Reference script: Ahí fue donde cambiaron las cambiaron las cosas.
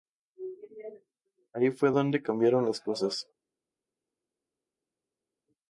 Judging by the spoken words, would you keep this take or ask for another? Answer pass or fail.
fail